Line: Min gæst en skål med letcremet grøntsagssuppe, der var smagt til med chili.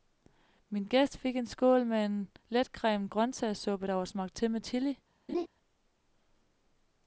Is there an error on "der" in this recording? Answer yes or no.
no